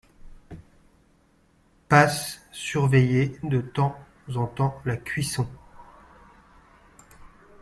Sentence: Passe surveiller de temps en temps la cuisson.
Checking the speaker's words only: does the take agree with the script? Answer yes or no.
yes